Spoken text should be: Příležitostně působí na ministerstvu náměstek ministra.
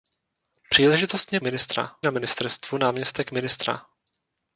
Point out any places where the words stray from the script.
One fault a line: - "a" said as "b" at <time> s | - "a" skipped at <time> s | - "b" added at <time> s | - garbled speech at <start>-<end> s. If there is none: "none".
- "působí" said as "ministra" at 1.4 s